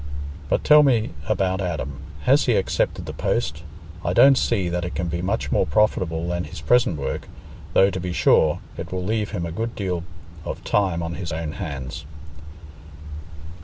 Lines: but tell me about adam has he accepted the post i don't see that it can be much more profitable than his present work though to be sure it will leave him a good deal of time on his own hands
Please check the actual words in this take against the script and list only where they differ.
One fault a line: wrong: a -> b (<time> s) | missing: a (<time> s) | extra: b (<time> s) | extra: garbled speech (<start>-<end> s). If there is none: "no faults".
no faults